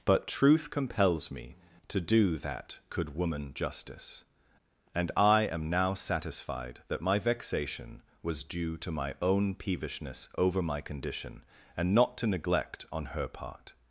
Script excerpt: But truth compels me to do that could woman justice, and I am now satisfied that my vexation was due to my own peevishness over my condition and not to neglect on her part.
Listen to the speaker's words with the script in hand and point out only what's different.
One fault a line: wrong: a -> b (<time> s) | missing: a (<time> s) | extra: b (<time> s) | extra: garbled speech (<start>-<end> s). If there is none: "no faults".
no faults